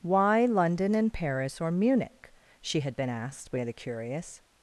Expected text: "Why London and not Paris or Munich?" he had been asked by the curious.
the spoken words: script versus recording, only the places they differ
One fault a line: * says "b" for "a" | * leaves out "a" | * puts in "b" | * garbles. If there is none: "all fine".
* leaves out "not"
* says "she" for "he"